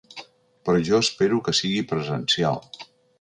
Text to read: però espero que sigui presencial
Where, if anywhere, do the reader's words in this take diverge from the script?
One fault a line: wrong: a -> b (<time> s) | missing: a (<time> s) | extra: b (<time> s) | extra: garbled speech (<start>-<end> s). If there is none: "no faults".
extra: jo (0.9 s)